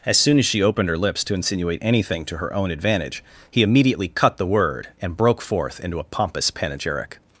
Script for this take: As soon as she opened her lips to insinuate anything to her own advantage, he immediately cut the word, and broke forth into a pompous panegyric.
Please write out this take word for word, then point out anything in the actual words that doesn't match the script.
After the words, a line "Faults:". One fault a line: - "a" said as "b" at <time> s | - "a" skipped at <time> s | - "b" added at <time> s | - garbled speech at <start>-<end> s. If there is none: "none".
As soon as she opened her lips to insinuate anything to her own advantage, he immediately cut the word, and broke forth into a pompous panegyric.
Faults:
none